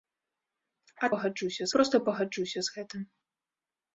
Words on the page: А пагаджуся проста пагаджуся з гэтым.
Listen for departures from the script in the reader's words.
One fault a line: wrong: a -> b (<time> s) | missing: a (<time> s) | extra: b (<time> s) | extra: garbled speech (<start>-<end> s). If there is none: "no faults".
no faults